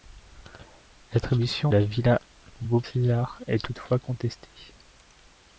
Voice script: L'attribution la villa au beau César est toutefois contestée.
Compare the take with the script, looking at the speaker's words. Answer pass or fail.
pass